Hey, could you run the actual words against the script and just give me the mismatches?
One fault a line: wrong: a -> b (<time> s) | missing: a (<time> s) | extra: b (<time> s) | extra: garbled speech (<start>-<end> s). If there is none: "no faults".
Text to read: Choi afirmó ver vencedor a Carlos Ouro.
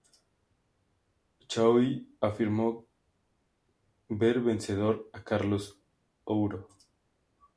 no faults